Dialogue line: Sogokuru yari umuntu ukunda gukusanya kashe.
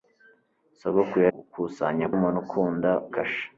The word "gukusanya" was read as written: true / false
false